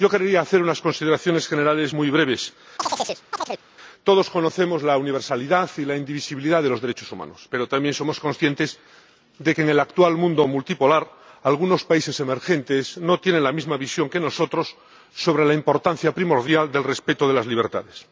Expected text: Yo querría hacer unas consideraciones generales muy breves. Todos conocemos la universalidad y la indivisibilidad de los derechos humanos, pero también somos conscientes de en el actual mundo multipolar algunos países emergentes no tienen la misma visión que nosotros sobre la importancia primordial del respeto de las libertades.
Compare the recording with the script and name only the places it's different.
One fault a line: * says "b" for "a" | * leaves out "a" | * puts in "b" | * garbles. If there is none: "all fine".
* puts in "que"